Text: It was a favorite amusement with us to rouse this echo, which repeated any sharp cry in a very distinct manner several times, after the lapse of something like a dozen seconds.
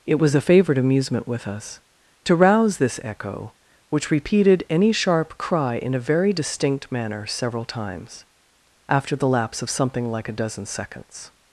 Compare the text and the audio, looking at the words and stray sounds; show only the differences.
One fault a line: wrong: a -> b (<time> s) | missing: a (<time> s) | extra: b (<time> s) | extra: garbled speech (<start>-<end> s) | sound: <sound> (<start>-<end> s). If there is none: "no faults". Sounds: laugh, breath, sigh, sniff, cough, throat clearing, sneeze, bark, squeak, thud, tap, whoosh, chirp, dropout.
no faults